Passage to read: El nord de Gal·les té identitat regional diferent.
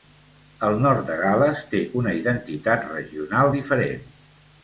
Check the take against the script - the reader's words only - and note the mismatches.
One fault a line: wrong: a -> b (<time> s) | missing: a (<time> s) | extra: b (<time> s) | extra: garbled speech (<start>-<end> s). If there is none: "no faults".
extra: una (2.0 s)